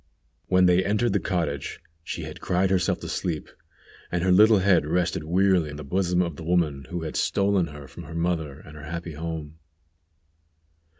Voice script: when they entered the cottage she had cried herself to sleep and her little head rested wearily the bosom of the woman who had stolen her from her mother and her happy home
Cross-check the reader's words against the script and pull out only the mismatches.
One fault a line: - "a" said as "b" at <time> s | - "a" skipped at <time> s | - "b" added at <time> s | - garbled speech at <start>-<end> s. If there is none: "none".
none